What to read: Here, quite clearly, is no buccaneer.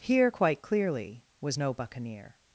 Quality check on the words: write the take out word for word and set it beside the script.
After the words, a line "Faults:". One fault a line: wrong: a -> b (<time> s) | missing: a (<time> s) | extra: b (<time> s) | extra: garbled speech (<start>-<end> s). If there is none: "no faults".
Here, quite clearly, was no buccaneer.
Faults:
wrong: is -> was (1.4 s)